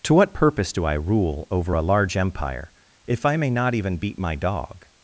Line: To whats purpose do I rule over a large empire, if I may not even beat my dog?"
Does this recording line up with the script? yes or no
no